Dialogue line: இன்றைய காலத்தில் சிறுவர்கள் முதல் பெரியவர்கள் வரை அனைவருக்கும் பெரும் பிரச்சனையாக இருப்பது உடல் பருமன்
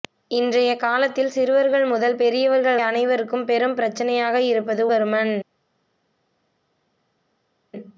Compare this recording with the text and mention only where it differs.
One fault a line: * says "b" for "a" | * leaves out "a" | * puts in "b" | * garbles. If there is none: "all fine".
* leaves out "வரை"
* leaves out "உடல்"